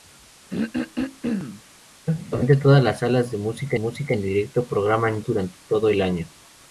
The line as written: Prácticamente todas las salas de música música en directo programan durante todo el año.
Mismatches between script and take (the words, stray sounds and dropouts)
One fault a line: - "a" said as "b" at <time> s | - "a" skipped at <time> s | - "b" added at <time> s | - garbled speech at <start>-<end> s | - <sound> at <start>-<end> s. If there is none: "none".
- throat clearing at 0.5-1.6 s